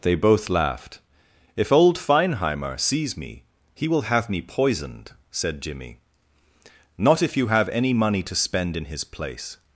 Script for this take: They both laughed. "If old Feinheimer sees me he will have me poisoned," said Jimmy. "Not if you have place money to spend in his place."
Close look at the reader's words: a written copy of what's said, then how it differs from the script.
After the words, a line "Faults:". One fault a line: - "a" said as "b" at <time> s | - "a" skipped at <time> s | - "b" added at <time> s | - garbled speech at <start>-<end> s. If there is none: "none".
They both laughed. "If old Feinheimer sees me he will have me poisoned," said Jimmy. "Not if you have any money to spend in his place."
Faults:
- "place" said as "any" at 7.7 s